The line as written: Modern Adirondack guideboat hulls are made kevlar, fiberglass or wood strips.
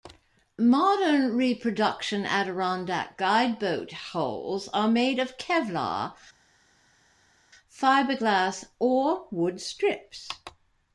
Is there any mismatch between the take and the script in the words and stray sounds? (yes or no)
yes